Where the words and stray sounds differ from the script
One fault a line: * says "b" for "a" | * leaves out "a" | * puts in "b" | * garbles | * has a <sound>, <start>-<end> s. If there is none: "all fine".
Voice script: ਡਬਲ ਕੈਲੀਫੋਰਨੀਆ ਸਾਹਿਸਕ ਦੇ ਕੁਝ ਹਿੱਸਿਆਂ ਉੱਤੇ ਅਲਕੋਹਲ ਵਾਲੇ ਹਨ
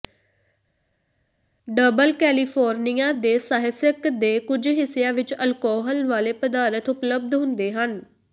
* puts in "ਦੇ"
* says "ਵਿੱਚ" for "ਉੱਤੇ"
* puts in "ਪਦਾਰਥ ਉਪਲਬਧ ਹੁੰਦੇ"